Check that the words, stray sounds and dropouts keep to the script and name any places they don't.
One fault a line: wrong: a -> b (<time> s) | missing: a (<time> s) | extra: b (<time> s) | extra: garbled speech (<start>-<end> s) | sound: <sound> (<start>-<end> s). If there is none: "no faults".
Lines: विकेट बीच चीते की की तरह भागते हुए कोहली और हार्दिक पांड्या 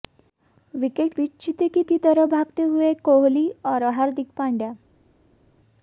no faults